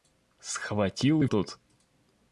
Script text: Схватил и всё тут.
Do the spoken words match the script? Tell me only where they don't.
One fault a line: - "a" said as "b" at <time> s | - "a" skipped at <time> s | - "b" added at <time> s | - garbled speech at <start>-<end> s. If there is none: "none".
- "всё" skipped at 1.3 s